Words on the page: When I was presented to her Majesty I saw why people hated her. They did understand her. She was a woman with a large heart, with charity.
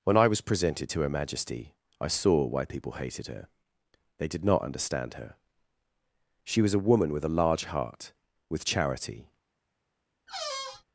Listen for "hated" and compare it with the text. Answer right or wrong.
right